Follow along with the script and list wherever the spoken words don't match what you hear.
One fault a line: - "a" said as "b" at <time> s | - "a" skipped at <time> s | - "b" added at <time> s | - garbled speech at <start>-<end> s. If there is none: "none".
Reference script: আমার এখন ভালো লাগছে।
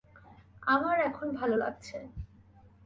none